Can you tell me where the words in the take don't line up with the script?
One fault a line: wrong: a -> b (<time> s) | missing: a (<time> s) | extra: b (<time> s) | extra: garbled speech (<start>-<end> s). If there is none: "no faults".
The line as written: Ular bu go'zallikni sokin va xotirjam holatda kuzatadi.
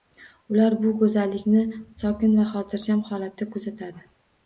no faults